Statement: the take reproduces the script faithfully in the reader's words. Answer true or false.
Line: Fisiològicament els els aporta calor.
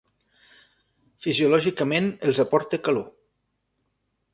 false